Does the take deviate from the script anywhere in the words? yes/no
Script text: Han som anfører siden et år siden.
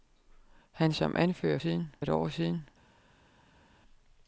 no